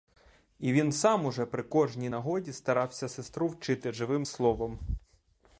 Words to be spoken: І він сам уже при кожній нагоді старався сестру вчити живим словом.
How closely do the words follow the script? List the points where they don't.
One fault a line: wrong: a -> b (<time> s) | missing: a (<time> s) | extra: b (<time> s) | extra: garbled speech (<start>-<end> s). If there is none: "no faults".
no faults